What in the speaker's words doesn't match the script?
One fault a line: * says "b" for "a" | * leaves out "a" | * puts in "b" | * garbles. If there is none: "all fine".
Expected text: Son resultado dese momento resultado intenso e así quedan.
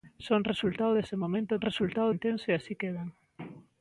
all fine